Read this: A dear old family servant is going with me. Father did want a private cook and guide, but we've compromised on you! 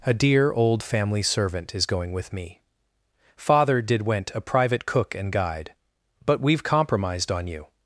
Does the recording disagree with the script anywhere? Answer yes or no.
yes